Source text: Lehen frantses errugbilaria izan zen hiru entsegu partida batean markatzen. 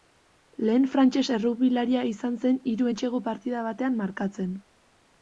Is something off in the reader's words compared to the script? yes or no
no